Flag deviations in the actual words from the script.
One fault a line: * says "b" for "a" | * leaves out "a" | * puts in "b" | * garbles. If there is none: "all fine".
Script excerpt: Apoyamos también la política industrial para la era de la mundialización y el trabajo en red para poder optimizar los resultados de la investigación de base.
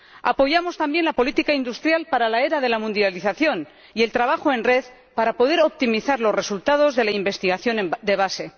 all fine